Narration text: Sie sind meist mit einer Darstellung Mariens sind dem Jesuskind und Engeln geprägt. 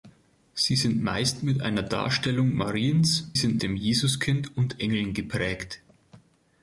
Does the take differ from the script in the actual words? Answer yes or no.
no